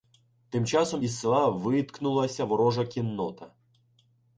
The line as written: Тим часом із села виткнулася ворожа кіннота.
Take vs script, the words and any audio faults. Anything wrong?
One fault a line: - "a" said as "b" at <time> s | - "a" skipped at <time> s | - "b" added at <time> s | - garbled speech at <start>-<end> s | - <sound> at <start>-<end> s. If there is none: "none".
none